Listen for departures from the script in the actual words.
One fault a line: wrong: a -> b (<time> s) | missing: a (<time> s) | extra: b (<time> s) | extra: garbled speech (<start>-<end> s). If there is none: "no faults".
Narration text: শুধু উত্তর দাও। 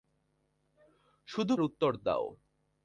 no faults